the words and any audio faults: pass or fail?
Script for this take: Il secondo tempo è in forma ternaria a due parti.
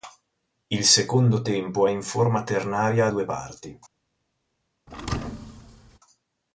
fail